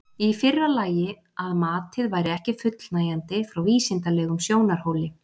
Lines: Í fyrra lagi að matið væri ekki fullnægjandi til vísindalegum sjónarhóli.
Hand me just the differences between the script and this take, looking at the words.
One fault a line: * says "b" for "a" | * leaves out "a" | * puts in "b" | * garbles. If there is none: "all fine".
* says "frá" for "til"